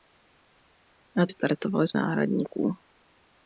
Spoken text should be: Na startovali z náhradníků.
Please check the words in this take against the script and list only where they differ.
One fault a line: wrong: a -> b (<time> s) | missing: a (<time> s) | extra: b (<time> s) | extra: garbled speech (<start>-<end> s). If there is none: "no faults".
no faults